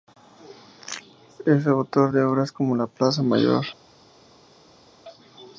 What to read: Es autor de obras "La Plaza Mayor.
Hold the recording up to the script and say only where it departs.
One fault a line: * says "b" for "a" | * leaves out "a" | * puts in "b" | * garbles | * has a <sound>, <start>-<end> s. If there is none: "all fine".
* puts in "como"